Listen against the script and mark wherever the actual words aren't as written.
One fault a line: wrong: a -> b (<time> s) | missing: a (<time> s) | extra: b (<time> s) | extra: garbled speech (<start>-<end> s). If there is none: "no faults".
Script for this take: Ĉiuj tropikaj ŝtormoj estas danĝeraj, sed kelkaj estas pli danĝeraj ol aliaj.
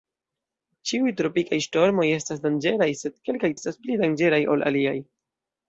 no faults